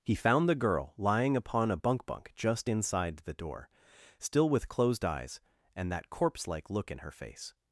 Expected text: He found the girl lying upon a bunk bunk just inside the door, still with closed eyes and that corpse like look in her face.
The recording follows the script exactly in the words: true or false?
true